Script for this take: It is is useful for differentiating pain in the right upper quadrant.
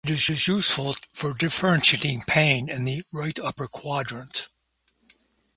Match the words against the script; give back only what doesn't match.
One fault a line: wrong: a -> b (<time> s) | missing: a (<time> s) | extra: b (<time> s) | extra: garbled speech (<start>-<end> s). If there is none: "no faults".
no faults